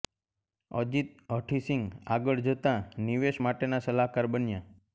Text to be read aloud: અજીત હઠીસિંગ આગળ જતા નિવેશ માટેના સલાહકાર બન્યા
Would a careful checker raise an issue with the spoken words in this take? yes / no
no